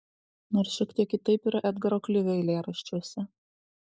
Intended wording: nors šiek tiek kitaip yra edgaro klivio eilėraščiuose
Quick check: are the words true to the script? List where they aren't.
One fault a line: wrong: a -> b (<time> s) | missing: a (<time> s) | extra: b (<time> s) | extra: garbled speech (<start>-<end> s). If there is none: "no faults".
no faults